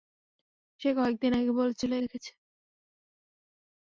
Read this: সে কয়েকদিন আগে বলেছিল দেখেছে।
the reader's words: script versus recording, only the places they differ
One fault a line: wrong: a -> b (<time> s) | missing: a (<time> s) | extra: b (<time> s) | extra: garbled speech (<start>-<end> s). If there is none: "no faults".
no faults